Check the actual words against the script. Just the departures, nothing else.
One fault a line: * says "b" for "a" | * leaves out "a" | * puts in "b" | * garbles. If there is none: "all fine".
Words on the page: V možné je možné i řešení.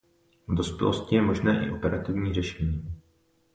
* says "dospělosti" for "možné"
* puts in "operativní"